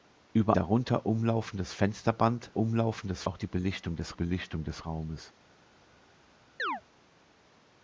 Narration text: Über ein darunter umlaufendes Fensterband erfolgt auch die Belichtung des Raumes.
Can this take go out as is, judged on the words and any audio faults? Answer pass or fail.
fail